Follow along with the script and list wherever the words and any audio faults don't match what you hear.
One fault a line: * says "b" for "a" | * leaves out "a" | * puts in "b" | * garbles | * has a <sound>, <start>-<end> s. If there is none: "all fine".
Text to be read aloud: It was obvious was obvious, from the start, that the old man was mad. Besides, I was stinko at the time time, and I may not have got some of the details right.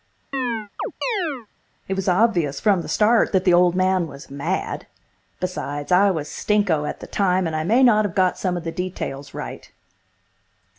* has a chirp, 0.3-1.5 s
* leaves out "was obvious"
* leaves out "time"